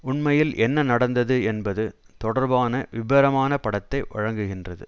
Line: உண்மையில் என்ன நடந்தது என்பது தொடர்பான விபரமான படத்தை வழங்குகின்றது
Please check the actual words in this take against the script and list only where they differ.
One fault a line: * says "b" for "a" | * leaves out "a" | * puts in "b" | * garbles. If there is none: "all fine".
all fine